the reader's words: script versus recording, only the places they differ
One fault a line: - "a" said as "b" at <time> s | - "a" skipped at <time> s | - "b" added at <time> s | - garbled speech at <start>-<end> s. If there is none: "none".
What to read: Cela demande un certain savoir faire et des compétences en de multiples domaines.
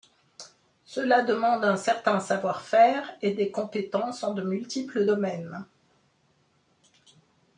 none